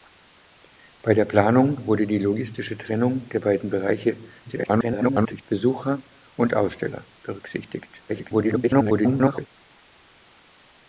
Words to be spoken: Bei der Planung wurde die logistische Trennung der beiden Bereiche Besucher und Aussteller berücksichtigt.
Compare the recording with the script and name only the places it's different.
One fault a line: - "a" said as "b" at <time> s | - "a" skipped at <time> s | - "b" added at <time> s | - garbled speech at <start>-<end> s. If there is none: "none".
- garbled speech at 4.4-5.4 s
- garbled speech at 8.1-9.5 s